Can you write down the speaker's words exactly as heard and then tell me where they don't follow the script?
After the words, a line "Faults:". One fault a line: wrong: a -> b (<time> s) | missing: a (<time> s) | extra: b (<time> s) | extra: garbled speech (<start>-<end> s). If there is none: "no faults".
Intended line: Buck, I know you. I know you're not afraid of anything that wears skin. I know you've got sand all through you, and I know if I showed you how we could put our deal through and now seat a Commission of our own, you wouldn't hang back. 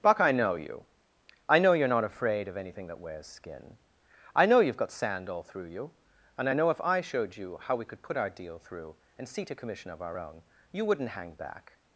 Buck, I know you. I know you're not afraid of anything that wears skin. I know you've got sand all through you, and I know if I showed you how we could put our deal through and seat a Commission of our own, you wouldn't hang back.
Faults:
missing: now (9.3 s)